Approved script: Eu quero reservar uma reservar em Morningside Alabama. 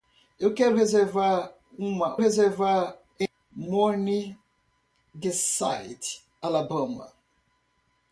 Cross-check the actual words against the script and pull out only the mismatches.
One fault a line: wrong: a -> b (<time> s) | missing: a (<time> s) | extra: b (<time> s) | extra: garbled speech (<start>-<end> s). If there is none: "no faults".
no faults